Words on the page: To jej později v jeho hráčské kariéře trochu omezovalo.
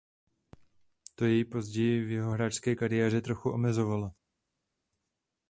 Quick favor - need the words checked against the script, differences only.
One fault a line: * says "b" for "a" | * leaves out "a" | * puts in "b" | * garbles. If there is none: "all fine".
all fine